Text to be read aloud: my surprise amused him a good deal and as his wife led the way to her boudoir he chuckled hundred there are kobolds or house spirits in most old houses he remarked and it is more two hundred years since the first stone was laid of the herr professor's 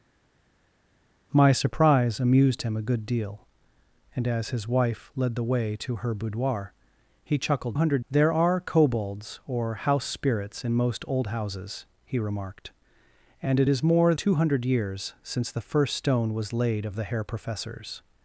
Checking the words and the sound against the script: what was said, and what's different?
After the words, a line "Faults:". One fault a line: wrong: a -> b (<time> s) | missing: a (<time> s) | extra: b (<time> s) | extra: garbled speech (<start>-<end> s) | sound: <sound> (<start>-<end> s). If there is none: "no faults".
my surprise amused him a good deal and as his wife led the way to her boudoir he chuckled hundred there are kobolds or house spirits in most old houses he remarked and it is more two hundred years since the first stone was laid of the herr professor's
Faults:
no faults